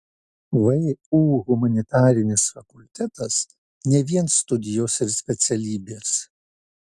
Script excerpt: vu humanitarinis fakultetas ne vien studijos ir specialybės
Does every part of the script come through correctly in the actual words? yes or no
yes